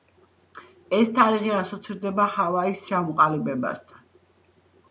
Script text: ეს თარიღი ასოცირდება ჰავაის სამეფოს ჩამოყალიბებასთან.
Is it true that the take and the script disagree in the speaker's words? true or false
true